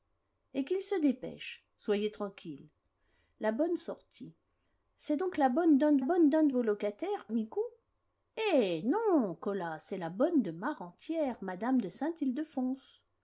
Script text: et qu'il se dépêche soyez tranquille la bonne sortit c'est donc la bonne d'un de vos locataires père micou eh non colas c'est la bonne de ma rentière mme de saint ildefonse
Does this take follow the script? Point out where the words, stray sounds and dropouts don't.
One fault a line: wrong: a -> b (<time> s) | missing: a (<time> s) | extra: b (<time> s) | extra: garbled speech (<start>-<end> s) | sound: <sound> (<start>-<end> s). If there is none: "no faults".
extra: bonne d'un de (6.0 s)
missing: père (7.3 s)